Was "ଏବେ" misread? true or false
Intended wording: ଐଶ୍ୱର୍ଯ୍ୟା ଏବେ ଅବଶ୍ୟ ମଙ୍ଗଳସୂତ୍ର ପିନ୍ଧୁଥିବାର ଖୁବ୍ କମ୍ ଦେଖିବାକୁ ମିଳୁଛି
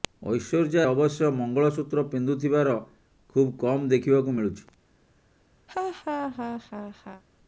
true